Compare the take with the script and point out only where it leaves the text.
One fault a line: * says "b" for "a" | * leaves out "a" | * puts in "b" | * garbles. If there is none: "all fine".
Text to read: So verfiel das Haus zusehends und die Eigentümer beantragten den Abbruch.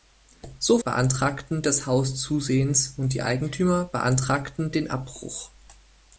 * says "beantragten" for "verfiel"